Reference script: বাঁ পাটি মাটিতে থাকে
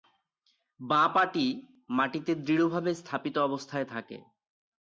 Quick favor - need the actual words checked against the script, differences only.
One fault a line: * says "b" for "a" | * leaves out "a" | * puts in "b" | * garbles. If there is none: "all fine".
* puts in "দৃঢ়ভাবে স্থাপিত অবস্থায়"